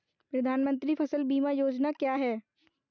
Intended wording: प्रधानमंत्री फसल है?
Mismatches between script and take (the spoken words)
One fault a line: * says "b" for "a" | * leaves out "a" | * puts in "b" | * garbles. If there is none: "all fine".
* puts in "बीमा योजना क्या"